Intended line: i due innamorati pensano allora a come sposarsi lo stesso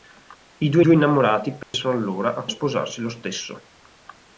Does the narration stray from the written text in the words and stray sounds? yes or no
yes